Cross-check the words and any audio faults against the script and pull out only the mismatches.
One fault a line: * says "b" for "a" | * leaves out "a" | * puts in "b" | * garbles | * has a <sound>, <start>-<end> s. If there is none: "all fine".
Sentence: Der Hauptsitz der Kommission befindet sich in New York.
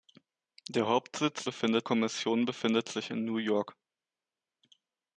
* says "befindet" for "der"